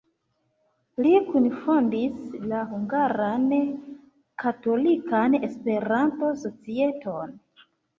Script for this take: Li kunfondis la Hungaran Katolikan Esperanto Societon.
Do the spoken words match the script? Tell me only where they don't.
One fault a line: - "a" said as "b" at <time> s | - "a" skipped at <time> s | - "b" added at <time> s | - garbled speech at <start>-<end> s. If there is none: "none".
none